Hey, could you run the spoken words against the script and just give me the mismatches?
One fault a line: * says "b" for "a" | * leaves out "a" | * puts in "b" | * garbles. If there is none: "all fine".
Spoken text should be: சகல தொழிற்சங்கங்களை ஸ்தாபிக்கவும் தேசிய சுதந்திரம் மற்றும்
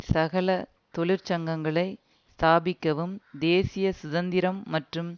all fine